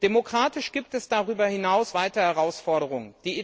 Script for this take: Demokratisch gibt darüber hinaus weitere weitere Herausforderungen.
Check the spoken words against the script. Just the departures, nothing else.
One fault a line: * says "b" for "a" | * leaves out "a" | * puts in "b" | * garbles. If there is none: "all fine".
* puts in "es"
* leaves out "weitere"